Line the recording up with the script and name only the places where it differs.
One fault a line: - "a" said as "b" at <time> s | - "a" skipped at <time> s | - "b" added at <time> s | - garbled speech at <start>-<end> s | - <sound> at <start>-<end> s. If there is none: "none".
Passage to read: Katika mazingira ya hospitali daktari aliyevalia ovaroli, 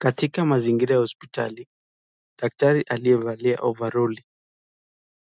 none